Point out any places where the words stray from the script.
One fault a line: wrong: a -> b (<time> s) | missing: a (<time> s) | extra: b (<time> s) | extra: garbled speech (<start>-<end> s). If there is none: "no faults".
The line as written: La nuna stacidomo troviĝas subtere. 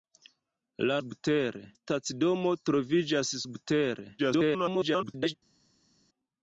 wrong: nuna -> subtere (1.0 s)
extra: garbled speech (4.2-5.3 s)